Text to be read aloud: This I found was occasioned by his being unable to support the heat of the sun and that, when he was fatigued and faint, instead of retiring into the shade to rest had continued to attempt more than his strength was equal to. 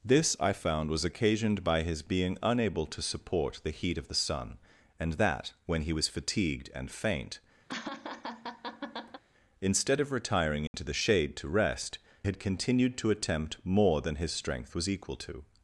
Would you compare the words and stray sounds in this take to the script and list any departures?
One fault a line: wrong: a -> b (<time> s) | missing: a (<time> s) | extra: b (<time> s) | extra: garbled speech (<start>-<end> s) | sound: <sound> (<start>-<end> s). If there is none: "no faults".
sound: laugh (7.7-9.2 s)
sound: dropout (10.7-10.7 s)